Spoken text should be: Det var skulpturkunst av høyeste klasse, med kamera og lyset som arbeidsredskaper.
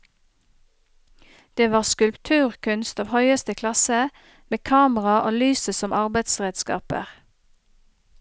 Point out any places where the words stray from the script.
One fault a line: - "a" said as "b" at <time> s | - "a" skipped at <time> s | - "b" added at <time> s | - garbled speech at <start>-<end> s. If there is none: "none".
none